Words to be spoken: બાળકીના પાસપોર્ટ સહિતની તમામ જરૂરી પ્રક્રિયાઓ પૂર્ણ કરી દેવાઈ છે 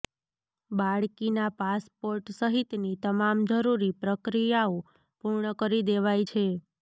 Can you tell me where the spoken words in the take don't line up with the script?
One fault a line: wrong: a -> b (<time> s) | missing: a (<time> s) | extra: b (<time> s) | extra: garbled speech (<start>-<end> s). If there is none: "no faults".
no faults